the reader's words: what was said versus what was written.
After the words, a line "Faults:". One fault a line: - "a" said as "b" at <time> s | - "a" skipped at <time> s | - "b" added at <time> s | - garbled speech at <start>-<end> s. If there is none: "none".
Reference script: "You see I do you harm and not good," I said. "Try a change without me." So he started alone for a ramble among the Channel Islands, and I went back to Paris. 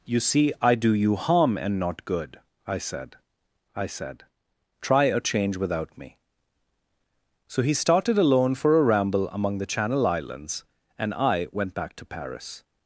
"You see I do you harm and not good," I said I said. "Try a change without me." So he started alone for a ramble among the Channel Islands, and I went back to Paris.
Faults:
- "I said" added at 3.8 s